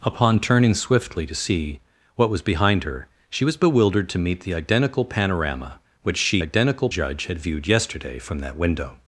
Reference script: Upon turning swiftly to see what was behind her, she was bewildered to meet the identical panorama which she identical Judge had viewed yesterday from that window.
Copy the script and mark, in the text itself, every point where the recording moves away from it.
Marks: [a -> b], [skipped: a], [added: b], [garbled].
Upon turning swiftly to see what was behind her, she was bewildered to meet the identical panorama which she identical Judge had viewed yesterday from that window.